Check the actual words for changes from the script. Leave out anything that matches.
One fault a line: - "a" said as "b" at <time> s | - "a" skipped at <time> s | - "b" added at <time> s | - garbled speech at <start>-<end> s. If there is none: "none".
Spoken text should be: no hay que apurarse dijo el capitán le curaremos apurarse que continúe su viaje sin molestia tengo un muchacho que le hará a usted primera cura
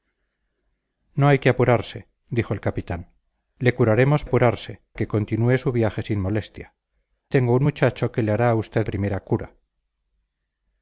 none